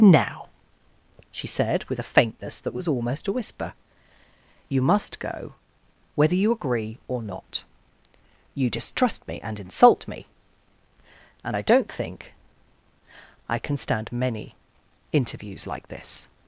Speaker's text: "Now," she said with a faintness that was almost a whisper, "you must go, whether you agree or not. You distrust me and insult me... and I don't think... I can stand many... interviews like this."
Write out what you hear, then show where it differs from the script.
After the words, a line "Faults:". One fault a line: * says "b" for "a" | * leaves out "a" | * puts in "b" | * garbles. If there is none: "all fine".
"Now," she said with a faintness that was almost a whisper, "you must go, whether you agree or not. You distrust me and insult me... and I don't think... I can stand many... interviews like this."
Faults:
all fine